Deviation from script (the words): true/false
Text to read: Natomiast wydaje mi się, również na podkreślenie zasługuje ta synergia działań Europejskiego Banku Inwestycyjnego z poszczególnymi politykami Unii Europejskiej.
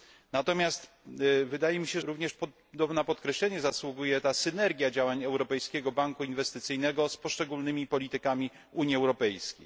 false